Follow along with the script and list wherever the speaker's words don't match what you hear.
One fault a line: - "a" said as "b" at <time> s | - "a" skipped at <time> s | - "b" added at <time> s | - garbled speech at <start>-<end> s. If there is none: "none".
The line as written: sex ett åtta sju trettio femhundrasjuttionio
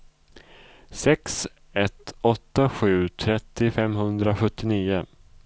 none